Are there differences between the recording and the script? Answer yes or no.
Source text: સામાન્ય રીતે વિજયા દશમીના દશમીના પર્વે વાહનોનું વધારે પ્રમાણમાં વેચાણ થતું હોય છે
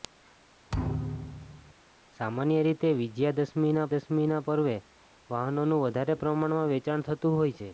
no